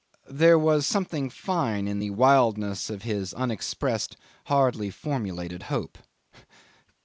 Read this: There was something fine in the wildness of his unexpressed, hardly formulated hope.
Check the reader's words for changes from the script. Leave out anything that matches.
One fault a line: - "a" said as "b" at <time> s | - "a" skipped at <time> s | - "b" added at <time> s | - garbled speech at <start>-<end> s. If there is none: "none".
none